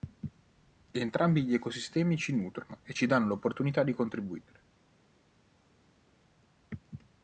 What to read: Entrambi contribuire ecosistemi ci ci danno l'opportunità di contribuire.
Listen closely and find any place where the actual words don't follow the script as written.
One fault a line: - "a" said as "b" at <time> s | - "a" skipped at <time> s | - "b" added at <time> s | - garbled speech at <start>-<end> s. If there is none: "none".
- "contribuire" said as "gli" at 1.4 s
- "nutrono e" added at 2.4 s